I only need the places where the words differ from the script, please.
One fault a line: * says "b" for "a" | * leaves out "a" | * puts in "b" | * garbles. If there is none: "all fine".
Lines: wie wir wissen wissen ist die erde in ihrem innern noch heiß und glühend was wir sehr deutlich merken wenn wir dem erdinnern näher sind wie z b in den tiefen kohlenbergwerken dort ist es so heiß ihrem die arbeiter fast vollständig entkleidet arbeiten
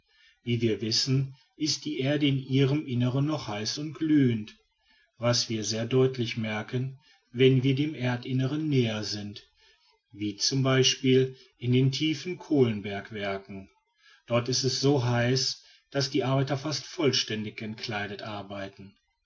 * leaves out "wissen"
* says "daß" for "ihrem"